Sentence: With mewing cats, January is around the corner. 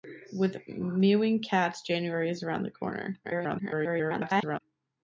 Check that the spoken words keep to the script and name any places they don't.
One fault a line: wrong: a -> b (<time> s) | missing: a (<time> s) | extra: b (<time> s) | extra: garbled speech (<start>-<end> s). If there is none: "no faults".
extra: garbled speech (3.2-4.6 s)